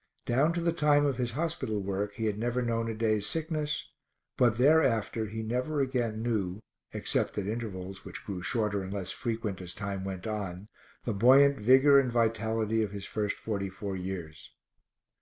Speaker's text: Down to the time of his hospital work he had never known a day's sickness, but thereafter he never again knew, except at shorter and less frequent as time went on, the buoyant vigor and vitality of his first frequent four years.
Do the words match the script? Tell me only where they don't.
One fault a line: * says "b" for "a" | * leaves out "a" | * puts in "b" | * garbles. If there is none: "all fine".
* puts in "intervals which grew"
* says "forty" for "frequent"